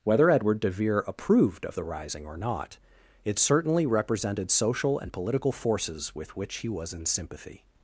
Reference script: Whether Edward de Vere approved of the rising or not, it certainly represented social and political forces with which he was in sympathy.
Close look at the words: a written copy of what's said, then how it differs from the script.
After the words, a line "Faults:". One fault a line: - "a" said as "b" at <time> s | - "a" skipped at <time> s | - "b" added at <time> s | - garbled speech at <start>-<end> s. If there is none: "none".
Whether Edward de Vere approved of the rising or not, it certainly represented social and political forces with which he was in sympathy.
Faults:
none